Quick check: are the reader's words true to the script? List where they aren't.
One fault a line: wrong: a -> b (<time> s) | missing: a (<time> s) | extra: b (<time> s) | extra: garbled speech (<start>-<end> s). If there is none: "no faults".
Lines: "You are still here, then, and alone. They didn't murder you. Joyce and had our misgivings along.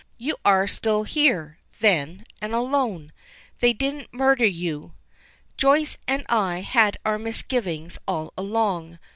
extra: I (6.3 s)
extra: all (8.1 s)